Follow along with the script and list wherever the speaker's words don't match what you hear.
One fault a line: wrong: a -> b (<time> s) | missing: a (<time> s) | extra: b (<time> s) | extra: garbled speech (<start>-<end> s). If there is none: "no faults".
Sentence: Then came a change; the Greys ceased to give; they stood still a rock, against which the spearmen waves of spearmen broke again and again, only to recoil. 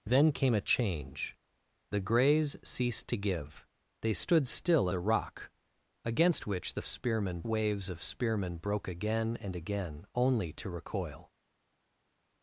no faults